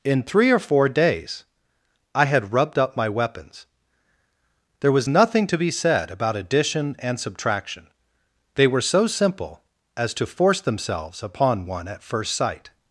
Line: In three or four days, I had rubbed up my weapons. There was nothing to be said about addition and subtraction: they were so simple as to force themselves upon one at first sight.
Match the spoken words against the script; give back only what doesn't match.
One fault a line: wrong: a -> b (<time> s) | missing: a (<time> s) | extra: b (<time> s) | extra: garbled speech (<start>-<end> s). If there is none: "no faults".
no faults